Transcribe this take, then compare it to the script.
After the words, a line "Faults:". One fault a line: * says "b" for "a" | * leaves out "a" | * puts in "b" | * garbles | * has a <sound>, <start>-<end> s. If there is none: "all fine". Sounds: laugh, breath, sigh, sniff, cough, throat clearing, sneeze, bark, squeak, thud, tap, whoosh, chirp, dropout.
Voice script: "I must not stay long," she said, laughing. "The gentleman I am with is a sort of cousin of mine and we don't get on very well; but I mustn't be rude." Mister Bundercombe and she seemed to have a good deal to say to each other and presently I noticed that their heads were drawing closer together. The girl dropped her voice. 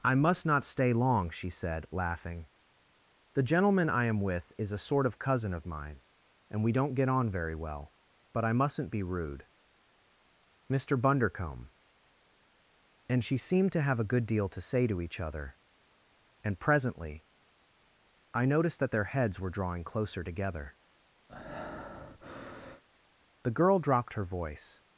"I must not stay long," she said, laughing. "The gentleman I am with is a sort of cousin of mine and we don't get on very well; but I mustn't be rude." Mister Bundercombe and she seemed to have a good deal to say to each other and presently I noticed that their heads were drawing closer together. The girl dropped her voice.
Faults:
* has a breath, 21.3-22.8 s